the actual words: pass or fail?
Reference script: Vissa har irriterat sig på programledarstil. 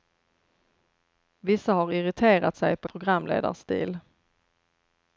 pass